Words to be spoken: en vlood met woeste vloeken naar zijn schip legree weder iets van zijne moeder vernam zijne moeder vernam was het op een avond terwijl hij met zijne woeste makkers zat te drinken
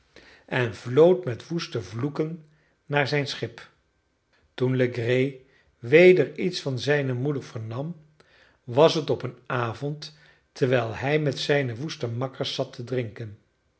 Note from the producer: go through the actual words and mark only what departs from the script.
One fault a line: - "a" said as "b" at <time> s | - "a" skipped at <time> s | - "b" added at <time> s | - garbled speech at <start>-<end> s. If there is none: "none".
- "toen" added at 4.5 s
- "zijne moeder vernam" skipped at 8.0 s